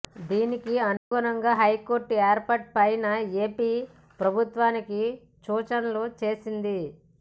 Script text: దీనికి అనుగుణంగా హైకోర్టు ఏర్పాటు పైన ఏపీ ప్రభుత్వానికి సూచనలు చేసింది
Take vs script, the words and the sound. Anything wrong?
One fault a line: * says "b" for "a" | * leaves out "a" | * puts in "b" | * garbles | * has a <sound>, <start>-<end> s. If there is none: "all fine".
* has a dropout, 1.0-1.1 s